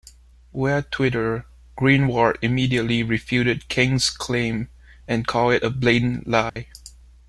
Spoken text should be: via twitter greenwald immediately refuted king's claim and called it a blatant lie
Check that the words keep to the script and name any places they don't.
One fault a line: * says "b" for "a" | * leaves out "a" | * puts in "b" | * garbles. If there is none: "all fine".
all fine